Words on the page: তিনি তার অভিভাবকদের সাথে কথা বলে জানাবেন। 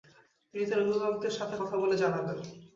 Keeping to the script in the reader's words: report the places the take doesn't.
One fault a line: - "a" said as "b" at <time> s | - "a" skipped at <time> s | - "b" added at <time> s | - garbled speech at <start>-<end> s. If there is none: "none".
none